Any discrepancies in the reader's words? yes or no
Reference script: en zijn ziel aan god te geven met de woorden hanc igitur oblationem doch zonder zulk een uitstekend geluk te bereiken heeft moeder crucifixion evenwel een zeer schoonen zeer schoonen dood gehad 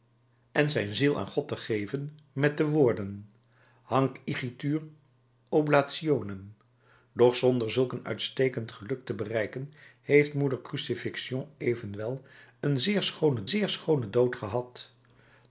no